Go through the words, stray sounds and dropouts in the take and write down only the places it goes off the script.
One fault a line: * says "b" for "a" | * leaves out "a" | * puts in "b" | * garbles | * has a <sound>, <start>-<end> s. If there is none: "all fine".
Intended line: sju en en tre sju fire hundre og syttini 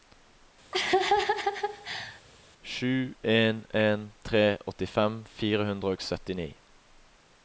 * has a laugh, 0.7-2.2 s
* says "åttifem" for "sju"